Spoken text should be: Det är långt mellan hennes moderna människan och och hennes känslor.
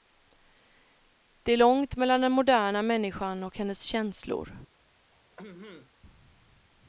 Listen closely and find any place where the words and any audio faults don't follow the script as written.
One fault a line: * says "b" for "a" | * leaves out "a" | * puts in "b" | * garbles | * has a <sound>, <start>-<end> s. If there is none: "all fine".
* says "den" for "hennes"
* leaves out "och"
* has a throat clearing, 5.1-5.9 s